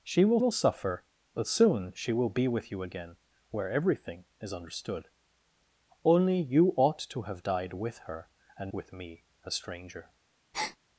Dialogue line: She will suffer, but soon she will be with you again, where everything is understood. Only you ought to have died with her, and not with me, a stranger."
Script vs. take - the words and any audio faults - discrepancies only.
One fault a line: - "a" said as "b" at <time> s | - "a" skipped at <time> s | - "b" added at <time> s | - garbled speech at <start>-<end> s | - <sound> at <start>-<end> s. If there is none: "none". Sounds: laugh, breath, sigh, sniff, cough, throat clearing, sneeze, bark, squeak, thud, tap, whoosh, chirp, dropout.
- "will" added at 0.4 s
- "not" skipped at 8.7 s
- breath at 10.5-10.8 s